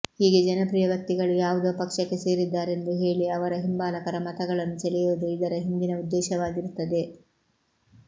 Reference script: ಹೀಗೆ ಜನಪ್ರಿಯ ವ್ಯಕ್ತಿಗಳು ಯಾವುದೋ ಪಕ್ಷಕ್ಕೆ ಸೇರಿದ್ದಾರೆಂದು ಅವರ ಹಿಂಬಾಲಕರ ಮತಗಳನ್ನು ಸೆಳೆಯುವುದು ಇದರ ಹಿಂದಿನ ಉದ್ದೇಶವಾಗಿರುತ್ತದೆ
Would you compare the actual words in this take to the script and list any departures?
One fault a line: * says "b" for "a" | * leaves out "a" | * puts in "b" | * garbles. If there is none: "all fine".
* puts in "ಹೇಳಿ"